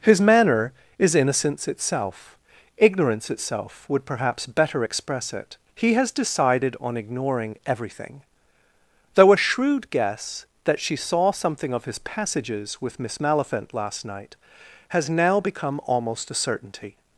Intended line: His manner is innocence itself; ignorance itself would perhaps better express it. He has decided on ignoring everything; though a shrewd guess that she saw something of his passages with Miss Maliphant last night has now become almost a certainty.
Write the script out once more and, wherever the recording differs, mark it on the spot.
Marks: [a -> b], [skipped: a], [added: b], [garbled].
His manner is innocence itself; ignorance itself would perhaps better express it. He has decided on ignoring everything; though a shrewd guess that she saw something of his passages with Miss Maliphant last night has now become almost a certainty.